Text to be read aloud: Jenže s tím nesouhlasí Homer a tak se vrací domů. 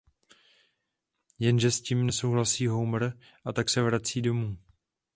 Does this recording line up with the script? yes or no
yes